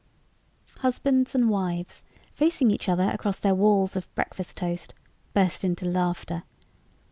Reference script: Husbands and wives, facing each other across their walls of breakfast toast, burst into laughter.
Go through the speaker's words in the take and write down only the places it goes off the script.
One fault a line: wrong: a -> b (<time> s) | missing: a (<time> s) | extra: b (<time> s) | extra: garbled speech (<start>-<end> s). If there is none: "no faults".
no faults